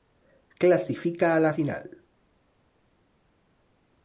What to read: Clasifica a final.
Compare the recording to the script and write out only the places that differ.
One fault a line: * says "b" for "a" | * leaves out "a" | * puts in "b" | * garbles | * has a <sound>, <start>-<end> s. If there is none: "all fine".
* puts in "la"